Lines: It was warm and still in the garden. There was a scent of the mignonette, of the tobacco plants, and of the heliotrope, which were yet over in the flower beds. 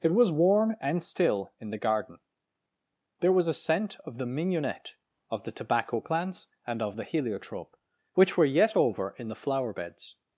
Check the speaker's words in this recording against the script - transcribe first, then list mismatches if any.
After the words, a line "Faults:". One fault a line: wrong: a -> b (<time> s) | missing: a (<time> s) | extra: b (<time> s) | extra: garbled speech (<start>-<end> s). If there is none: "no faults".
It was warm and still in the garden. There was a scent of the mignonette, of the tobacco plants, and of the heliotrope, which were yet over in the flower beds.
Faults:
no faults